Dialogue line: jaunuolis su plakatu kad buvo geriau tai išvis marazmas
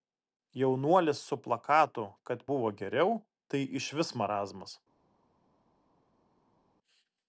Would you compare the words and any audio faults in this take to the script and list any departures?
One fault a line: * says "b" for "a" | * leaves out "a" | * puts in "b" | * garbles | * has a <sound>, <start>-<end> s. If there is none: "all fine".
all fine